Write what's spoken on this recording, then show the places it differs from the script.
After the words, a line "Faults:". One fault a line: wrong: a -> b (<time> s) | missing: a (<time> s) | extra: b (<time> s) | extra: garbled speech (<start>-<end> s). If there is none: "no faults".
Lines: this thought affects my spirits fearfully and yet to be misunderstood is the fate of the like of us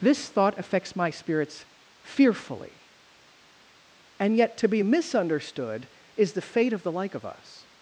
this thought affects my spirits fearfully and yet to be misunderstood is the fate of the like of us
Faults:
no faults